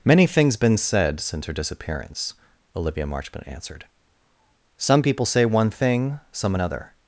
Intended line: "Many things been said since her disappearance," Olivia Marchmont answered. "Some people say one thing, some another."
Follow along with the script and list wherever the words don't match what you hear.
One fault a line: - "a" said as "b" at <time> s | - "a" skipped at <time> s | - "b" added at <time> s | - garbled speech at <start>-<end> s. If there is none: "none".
none